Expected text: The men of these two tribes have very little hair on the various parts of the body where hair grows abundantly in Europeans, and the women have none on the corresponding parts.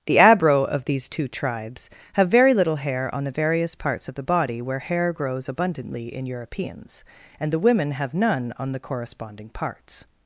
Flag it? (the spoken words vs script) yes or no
yes